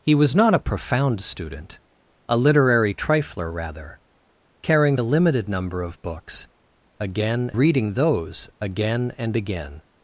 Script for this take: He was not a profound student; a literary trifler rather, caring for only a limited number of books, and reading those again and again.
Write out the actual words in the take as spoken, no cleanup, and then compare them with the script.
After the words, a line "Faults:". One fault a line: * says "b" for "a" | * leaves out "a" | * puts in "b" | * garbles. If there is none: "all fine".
He was not a profound student; a literary trifler rather, caring a limited number of books, again reading those again and again.
Faults:
* leaves out "for only"
* says "again" for "and"